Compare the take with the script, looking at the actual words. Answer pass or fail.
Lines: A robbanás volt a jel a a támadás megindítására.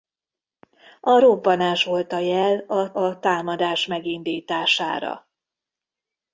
pass